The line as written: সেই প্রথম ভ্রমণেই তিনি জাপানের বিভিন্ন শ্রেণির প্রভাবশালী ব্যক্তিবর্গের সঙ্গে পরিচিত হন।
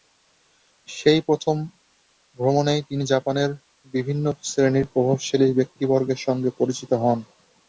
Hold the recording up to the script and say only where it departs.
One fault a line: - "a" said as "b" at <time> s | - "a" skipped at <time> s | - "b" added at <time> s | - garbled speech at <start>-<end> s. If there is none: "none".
none